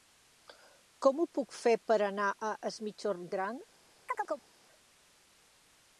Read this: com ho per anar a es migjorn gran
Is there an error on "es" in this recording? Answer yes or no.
no